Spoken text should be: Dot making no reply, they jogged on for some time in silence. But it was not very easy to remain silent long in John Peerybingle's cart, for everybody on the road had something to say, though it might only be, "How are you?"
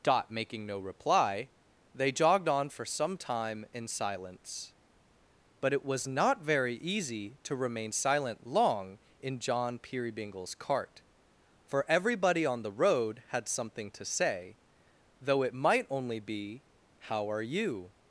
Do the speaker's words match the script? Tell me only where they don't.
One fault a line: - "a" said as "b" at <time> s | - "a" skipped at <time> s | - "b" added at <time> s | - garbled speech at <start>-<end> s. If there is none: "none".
none